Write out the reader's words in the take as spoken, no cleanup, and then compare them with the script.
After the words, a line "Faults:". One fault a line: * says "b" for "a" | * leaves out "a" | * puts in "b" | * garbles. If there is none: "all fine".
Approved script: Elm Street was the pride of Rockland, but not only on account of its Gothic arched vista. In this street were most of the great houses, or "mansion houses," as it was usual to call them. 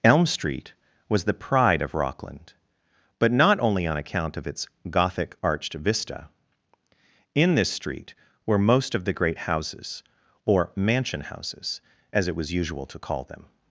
Elm Street was the pride of Rockland, but not only on account of its Gothic arched vista. In this street were most of the great houses, or "mansion houses," as it was usual to call them.
Faults:
all fine